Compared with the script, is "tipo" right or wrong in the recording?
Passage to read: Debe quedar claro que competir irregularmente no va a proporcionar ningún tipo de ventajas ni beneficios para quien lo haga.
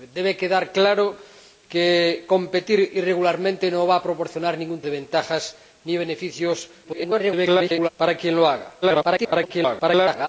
wrong